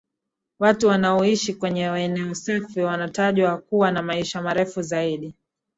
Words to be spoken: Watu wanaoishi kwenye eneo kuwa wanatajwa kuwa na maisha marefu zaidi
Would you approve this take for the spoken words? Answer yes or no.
no